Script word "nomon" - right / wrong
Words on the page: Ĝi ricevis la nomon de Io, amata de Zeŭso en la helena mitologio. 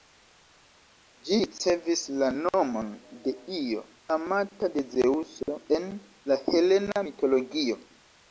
right